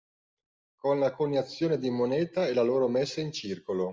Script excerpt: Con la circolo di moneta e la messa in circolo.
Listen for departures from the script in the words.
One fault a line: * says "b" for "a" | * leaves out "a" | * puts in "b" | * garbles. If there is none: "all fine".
* says "coniazione" for "circolo"
* puts in "loro"